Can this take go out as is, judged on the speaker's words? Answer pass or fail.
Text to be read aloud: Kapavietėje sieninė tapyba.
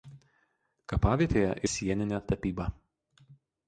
pass